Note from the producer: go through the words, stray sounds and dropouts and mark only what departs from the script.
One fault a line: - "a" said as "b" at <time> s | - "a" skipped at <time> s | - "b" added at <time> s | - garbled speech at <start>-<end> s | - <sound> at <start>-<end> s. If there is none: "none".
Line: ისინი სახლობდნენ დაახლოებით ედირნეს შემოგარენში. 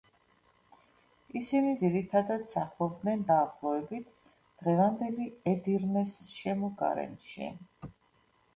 - "ძირითადად" added at 1.8 s
- "დღევანდელი" added at 4.7 s